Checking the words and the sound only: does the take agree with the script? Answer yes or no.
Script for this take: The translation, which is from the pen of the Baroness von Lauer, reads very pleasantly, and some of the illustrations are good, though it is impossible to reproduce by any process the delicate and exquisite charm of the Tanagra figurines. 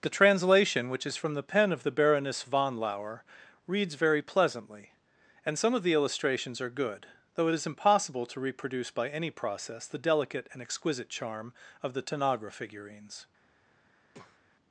no